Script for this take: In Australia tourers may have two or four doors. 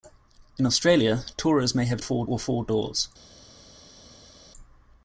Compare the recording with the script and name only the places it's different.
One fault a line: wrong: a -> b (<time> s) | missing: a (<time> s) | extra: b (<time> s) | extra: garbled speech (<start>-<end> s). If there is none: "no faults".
wrong: two -> four (2.0 s)